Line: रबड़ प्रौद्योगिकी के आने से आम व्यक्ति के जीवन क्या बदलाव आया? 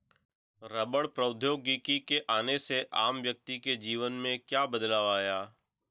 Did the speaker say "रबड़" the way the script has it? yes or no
yes